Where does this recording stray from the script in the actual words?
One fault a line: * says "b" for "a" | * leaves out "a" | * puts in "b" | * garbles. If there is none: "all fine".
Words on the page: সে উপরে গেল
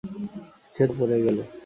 all fine